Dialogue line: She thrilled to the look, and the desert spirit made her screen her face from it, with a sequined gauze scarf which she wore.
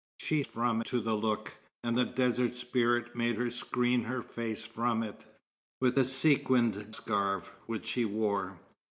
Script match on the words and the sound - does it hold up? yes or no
no